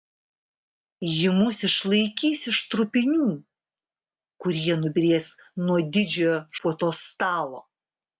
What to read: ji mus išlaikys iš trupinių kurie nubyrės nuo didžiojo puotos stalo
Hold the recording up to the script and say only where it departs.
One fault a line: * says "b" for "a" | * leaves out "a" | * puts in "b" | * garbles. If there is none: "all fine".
all fine